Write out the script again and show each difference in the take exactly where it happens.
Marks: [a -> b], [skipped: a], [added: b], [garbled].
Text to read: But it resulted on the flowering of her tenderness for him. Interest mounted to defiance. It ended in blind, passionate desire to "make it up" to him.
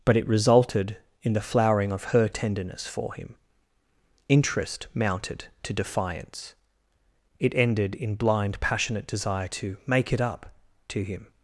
But it resulted [on -> in] the flowering of her tenderness for him. Interest mounted to defiance. It ended in blind, passionate desire to "make it up" to him.